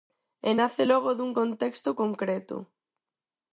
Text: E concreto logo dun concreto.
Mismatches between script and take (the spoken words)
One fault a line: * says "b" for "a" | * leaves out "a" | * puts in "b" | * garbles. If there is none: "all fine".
* says "nace" for "concreto"
* puts in "contexto"